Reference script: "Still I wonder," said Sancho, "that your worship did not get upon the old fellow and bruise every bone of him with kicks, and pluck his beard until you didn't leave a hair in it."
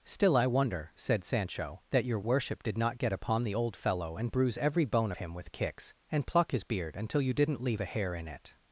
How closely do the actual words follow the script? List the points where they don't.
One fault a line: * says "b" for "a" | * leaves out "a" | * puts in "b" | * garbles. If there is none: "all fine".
* leaves out "of"